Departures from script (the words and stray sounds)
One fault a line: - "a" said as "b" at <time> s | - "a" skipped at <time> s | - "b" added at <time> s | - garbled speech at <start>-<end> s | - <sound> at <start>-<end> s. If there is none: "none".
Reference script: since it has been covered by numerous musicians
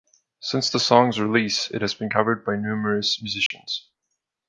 - "the song's release" added at 0.7 s
- dropout at 3.5-3.5 s